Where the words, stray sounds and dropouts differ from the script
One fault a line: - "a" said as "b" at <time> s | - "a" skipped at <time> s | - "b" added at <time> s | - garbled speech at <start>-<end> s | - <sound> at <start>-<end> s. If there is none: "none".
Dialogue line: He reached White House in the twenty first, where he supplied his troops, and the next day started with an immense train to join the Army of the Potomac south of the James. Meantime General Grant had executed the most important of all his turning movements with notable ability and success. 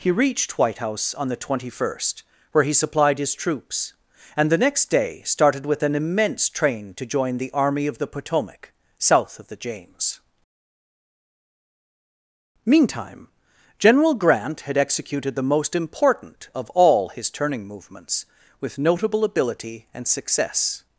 - "in" said as "on" at 1.1 s